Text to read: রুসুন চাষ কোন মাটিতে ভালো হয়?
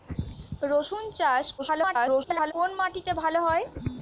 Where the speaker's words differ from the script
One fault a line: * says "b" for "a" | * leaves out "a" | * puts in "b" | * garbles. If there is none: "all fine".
* garbles